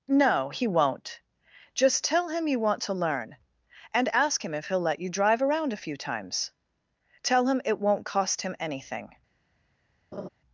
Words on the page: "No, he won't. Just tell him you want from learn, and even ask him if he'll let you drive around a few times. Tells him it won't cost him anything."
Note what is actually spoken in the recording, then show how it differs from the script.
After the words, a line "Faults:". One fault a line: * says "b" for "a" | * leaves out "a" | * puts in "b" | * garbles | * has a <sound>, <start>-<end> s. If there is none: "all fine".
"No, he won't. Just tell him you want to learn, and ask him if he'll let you drive around a few times. Tell him it won't cost him anything."
Faults:
* says "to" for "from"
* leaves out "even"
* says "Tell" for "Tells"
* has a laugh, 10.1-10.3 s